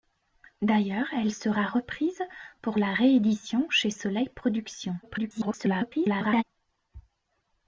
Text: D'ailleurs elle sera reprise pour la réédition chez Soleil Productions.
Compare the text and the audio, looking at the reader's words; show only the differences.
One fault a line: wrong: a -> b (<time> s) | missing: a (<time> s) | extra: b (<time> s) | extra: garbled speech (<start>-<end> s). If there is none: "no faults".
extra: garbled speech (5.0-6.4 s)